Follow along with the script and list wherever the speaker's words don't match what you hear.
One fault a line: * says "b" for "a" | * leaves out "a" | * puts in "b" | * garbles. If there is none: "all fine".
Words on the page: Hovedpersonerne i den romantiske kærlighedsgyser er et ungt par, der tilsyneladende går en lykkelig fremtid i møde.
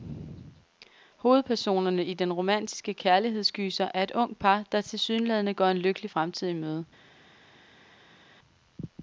all fine